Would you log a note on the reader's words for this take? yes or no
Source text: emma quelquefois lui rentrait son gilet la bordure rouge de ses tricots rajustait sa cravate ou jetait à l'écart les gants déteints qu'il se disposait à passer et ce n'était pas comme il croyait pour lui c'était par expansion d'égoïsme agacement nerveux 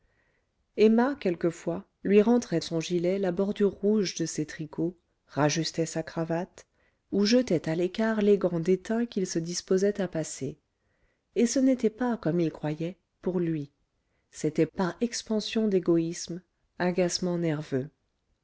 no